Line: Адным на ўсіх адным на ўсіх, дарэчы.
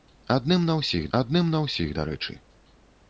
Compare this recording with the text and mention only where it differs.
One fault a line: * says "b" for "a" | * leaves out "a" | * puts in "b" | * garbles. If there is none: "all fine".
all fine